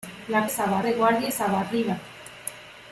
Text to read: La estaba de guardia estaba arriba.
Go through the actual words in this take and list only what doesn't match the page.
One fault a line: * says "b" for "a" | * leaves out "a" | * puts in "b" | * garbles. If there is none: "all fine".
all fine